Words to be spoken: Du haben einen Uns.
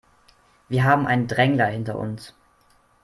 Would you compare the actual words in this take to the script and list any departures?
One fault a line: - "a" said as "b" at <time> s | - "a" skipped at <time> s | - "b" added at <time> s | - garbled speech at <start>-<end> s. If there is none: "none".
- "Du" said as "Wir" at 0.7 s
- "Drängler hinter" added at 1.3 s